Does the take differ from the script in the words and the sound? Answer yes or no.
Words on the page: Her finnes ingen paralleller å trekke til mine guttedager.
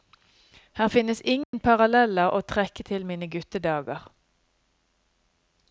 yes